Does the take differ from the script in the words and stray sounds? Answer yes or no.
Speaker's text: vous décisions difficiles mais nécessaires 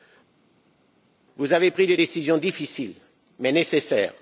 yes